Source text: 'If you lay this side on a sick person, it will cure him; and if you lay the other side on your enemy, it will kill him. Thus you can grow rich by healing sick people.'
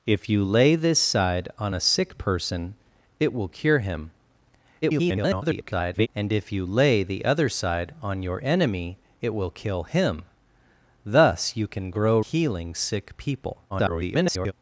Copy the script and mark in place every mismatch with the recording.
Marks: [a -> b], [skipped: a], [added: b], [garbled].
'If you lay this side on a sick person, it will cure him; [garbled] and if you lay the other side on your enemy, it will kill him. Thus you can grow [skipped: rich by] healing sick people.' [garbled]